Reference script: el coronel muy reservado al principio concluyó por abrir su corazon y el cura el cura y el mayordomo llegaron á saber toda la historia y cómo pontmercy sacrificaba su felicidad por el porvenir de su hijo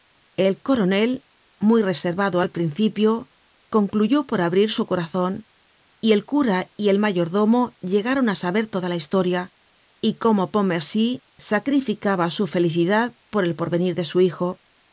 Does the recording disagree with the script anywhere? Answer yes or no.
yes